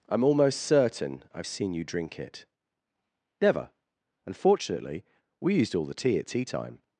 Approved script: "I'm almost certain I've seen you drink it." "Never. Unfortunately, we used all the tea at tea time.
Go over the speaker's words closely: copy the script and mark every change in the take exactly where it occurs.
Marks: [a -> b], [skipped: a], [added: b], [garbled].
"I'm almost certain I've seen you drink it." "Never. Unfortunately, we used all the tea at tea time.